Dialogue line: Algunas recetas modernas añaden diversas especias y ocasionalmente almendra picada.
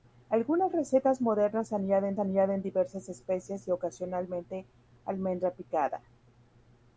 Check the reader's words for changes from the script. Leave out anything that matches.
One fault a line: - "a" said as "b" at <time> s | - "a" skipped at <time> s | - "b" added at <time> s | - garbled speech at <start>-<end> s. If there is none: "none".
- "añaden" added at 2.2 s